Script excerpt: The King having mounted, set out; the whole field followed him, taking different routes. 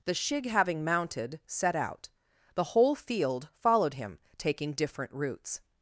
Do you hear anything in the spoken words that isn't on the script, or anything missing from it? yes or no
yes